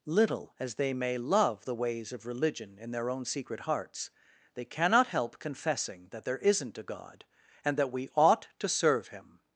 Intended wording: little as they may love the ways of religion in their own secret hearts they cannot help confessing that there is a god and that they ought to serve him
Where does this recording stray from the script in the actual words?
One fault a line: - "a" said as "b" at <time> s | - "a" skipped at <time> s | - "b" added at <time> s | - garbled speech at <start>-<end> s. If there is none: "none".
- "is" said as "isn't" at 6.4 s
- "they" said as "we" at 7.9 s